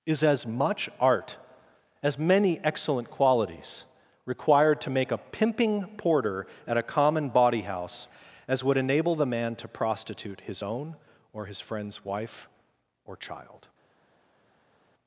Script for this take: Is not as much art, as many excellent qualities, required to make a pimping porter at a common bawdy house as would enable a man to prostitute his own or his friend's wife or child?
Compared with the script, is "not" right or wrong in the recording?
wrong